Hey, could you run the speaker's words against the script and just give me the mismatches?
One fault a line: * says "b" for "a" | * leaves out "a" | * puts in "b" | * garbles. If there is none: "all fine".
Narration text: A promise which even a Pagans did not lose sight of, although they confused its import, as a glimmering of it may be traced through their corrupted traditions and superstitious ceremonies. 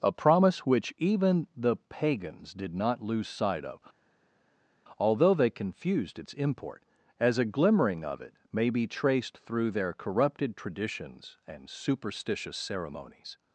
* says "the" for "a"